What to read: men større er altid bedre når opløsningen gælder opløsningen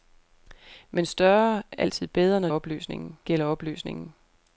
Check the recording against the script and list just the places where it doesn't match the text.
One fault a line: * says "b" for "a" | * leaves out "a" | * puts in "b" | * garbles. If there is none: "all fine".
all fine